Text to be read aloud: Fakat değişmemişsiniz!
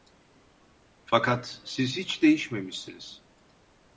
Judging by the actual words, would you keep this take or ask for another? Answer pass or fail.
fail